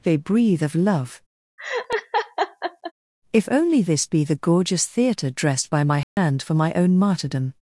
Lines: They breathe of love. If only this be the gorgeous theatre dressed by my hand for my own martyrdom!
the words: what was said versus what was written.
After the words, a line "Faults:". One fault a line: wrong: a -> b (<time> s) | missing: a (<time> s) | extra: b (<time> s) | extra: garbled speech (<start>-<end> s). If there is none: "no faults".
They breathe of love. If only this be the gorgeous theatre dressed by my hand for my own martyrdom!
Faults:
no faults